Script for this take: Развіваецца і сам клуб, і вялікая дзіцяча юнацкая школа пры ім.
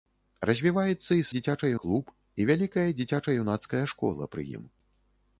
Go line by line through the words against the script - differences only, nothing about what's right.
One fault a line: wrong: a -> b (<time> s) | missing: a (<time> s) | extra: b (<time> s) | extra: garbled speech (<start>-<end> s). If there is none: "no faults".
wrong: сам -> дзіцяча (1.4 s)